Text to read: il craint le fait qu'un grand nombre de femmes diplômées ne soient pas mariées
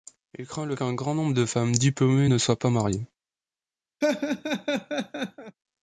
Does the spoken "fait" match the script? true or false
false